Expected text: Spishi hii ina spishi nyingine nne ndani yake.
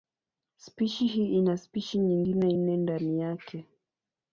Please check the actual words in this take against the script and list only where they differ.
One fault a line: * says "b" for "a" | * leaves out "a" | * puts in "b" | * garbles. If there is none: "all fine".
all fine